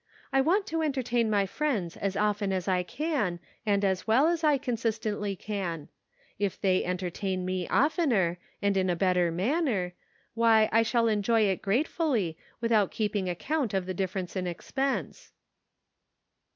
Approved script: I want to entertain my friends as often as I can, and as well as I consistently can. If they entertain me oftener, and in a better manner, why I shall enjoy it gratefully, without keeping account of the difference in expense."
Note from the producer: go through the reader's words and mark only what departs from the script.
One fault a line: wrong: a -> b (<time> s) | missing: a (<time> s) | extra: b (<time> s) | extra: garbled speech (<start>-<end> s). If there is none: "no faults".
no faults